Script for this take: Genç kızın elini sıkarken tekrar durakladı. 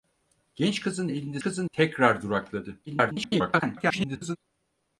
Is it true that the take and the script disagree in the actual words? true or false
true